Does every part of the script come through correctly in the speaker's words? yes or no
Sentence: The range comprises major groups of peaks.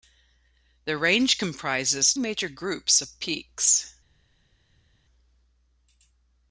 yes